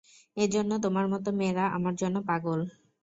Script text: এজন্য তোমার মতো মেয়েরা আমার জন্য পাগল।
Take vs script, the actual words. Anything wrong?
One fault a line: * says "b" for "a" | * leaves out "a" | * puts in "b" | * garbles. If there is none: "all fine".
all fine